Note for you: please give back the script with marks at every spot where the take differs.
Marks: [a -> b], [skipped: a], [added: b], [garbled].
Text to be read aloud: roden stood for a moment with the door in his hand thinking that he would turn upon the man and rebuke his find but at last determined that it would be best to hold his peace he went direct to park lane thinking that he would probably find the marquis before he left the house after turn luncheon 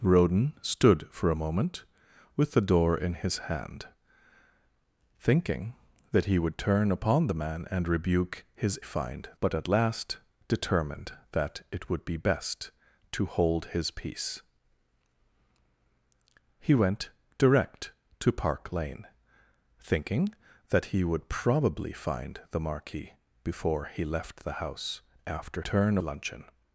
roden stood for a moment with the door in his hand thinking that he would turn upon the man and rebuke his find but at last determined that it would be best to hold his peace he went direct to park lane thinking that he would probably find the marquis before he left the house after turn luncheon